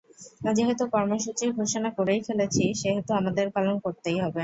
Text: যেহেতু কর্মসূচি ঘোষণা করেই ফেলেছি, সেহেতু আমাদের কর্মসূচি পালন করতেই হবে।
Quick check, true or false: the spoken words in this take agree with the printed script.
false